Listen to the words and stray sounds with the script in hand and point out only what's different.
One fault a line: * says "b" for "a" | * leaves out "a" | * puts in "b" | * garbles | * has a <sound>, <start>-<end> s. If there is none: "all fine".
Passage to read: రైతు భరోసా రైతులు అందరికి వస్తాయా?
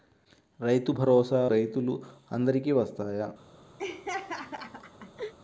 * has a laugh, 3.8-5.3 s